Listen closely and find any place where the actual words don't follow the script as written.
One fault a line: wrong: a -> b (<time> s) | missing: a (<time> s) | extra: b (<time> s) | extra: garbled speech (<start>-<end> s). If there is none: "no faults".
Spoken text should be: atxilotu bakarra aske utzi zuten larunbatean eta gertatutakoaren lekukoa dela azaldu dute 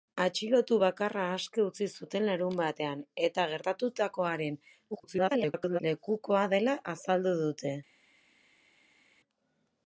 extra: garbled speech (4.9-5.8 s)